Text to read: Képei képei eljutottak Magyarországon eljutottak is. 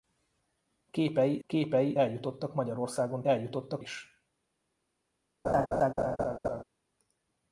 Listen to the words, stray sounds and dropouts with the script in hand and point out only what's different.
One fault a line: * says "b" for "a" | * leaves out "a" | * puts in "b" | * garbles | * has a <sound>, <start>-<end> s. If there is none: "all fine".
* has a laugh, 5.4-6.6 s